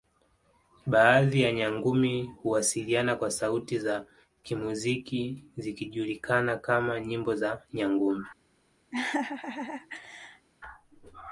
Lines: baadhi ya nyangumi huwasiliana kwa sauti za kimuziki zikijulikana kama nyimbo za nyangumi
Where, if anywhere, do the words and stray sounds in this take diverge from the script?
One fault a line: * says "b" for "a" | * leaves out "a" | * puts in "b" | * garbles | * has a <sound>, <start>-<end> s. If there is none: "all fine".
* has a laugh, 8.9-10.5 s